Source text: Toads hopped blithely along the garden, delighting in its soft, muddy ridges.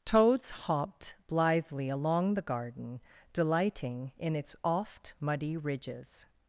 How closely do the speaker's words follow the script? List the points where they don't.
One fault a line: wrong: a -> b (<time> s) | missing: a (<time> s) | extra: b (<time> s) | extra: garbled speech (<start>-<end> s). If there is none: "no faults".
wrong: soft -> oft (4.6 s)